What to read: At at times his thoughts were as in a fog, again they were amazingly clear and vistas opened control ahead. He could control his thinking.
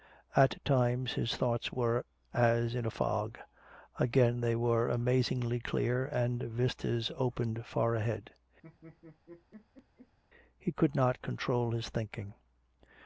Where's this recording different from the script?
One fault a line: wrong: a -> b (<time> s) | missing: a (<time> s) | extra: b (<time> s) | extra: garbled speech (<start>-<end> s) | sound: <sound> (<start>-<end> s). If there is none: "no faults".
missing: at (0.7 s)
wrong: control -> far (7.7 s)
sound: laugh (8.6-10.2 s)
extra: not (10.9 s)